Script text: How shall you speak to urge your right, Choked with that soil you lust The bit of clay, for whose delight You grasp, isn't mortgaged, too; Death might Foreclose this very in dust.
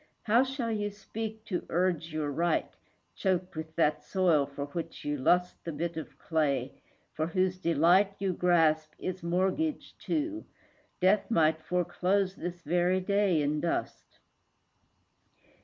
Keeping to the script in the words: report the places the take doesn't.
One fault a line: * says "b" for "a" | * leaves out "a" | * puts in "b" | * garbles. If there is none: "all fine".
* puts in "for which"
* says "is" for "isn't"
* puts in "day"